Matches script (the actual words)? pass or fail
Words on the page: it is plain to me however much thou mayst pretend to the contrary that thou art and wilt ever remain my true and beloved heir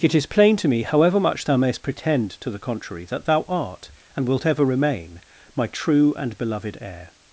pass